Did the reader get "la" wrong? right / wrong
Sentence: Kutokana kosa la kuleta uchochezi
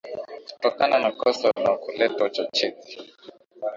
right